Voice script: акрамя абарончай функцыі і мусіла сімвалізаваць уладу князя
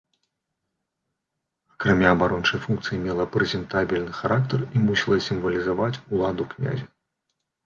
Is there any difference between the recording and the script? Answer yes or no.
yes